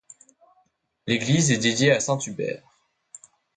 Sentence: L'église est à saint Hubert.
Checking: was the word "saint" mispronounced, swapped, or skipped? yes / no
no